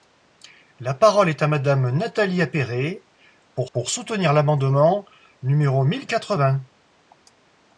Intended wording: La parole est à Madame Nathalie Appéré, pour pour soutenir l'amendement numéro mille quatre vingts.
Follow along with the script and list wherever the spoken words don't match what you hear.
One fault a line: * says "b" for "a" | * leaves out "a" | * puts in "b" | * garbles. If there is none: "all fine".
all fine